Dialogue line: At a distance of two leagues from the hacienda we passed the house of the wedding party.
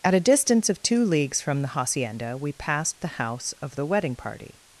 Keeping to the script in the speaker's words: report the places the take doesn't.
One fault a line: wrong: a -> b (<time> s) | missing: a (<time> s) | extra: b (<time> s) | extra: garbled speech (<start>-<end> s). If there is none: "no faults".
no faults